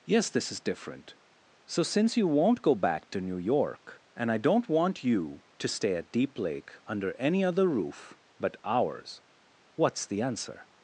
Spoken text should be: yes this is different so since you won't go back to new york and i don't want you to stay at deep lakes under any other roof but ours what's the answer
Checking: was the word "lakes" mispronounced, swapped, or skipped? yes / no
yes